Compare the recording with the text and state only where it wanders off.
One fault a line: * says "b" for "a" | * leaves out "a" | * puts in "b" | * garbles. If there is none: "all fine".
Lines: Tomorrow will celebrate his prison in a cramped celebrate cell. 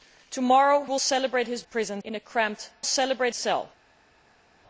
all fine